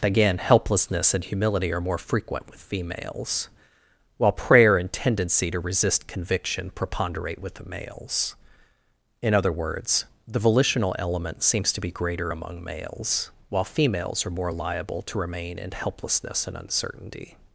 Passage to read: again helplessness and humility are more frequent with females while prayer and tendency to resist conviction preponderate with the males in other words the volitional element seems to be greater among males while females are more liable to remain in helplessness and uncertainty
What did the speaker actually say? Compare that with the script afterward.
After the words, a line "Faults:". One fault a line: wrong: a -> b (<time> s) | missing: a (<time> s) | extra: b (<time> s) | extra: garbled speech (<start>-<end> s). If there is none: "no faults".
again helplessness and humility are more frequent with females while prayer and tendency to resist conviction preponderate with the males in other words the volitional element seems to be greater among males while females are more liable to remain in helplessness and uncertainty
Faults:
no faults